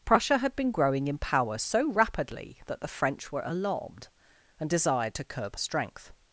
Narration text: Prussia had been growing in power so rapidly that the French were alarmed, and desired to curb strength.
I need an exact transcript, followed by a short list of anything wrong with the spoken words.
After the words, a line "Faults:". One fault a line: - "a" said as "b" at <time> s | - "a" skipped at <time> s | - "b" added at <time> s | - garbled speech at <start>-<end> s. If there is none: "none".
Prussia had been growing in power so rapidly that the French were alarmed, and desired to curb strength.
Faults:
none